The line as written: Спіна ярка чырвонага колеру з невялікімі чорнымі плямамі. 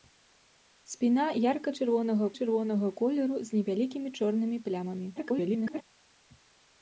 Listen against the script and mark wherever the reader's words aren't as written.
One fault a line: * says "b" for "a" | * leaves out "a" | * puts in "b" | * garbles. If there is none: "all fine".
* puts in "чырвонага"
* garbles